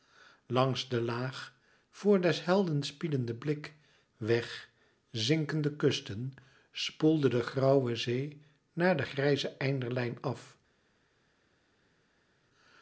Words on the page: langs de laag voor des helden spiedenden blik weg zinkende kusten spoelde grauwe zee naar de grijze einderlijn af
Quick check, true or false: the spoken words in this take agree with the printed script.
false